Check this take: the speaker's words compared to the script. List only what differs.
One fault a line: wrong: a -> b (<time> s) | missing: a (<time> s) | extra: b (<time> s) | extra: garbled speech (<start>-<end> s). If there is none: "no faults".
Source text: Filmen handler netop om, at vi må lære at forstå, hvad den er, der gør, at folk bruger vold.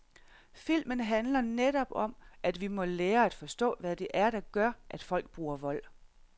wrong: den -> det (4.0 s)